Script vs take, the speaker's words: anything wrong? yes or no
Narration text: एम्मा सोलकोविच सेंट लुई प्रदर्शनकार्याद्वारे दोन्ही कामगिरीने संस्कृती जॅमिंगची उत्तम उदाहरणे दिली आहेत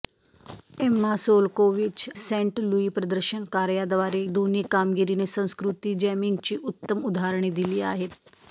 no